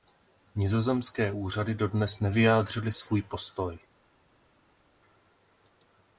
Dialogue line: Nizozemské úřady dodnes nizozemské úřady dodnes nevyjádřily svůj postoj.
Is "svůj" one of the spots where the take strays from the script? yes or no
no